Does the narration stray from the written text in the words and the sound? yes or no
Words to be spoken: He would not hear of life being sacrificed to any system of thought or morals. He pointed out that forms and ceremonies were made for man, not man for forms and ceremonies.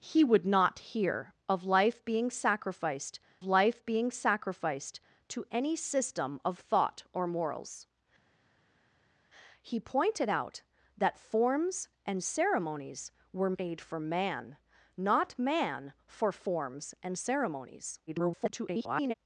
yes